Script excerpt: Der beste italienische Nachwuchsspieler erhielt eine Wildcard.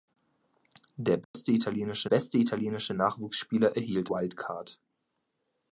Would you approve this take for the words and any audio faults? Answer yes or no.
no